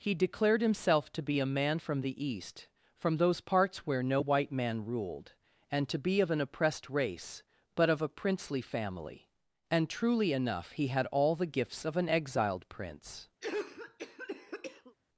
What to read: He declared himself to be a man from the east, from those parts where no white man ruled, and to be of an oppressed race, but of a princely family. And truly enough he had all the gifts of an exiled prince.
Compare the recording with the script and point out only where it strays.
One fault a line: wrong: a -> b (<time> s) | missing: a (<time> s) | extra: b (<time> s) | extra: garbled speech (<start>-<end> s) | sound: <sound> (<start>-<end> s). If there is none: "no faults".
sound: cough (13.4-15.0 s)